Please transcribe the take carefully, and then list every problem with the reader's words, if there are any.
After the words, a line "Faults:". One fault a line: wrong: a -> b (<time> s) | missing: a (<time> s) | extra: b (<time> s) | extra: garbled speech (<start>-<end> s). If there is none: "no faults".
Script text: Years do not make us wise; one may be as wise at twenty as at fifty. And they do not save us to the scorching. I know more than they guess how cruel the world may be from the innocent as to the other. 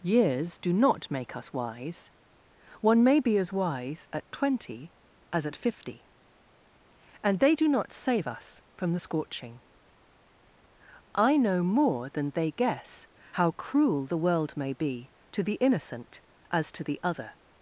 Years do not make us wise; one may be as wise at twenty as at fifty. And they do not save us from the scorching. I know more than they guess how cruel the world may be to the innocent as to the other.
Faults:
wrong: to -> from (8.8 s)
wrong: from -> to (15.3 s)